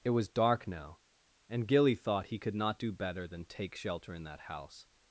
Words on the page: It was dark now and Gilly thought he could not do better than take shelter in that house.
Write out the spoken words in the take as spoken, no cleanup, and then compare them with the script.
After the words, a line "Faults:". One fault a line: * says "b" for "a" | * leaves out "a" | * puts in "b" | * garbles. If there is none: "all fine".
It was dark now and Gilly thought he could not do better than take shelter in that house.
Faults:
all fine